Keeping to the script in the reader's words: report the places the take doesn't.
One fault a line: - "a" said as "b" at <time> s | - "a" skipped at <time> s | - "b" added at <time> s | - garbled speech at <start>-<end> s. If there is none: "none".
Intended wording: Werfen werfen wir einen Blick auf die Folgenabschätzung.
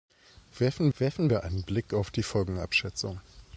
none